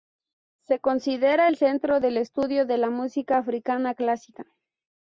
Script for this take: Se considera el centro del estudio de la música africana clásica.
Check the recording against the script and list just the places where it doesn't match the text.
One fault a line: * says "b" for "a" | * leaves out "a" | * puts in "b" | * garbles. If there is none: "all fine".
all fine